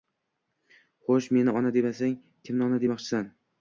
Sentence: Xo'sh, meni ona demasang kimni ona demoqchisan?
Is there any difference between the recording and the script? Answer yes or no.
no